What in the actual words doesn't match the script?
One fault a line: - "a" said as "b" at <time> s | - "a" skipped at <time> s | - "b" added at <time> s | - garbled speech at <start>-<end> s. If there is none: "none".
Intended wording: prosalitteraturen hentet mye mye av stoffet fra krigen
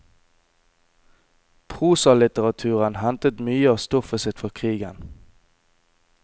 - "mye" skipped at 3.7 s
- "sitt" added at 4.2 s